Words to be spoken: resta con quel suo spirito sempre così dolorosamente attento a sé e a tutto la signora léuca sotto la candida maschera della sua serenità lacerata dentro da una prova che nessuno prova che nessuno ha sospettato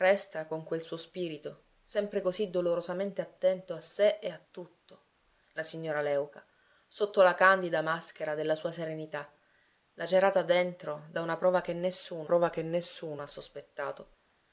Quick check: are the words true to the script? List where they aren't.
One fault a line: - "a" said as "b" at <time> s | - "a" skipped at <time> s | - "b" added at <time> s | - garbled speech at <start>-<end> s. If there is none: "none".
none